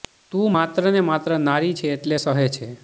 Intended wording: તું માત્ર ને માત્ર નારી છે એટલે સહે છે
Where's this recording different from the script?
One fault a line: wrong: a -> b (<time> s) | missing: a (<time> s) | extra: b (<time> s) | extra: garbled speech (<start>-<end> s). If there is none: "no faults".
no faults